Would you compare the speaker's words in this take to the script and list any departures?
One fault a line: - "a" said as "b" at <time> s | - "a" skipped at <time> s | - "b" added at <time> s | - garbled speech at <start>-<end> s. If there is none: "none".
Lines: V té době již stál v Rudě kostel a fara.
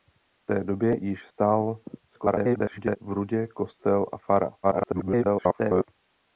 - garbled speech at 2.1-3.0 s
- garbled speech at 4.6-5.9 s